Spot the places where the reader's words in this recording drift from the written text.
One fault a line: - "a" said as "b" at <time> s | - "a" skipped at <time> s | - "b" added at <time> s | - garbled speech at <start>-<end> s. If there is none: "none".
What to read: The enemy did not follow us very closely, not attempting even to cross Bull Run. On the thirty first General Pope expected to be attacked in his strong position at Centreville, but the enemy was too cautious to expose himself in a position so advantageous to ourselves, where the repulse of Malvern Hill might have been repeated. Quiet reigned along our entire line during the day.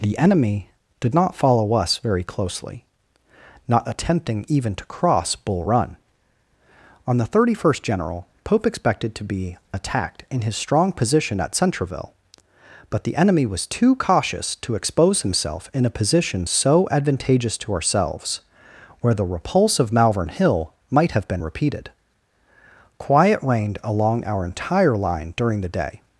none